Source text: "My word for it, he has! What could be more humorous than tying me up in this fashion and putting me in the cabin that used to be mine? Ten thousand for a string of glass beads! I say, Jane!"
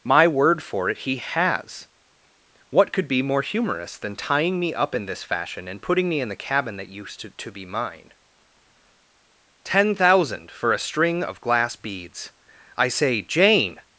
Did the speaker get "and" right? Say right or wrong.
right